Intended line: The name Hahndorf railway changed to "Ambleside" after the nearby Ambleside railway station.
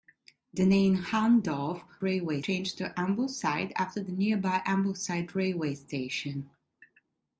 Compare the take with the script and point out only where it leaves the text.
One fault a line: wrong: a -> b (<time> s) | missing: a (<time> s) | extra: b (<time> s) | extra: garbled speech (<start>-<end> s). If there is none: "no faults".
no faults